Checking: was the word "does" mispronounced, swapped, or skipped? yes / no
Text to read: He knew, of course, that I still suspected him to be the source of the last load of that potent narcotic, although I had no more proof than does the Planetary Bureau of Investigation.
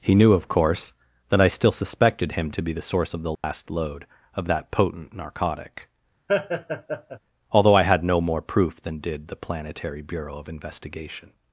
yes